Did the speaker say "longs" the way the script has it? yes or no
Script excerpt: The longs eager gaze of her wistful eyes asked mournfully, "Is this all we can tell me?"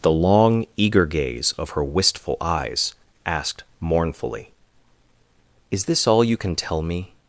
no